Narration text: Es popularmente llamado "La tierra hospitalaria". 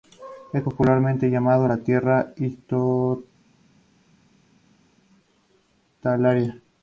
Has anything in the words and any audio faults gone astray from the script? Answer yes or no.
no